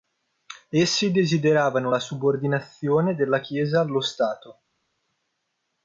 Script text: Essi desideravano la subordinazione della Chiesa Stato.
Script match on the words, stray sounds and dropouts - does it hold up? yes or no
no